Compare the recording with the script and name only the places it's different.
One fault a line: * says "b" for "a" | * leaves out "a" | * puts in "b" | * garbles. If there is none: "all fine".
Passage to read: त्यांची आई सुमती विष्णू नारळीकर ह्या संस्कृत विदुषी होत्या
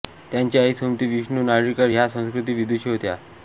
all fine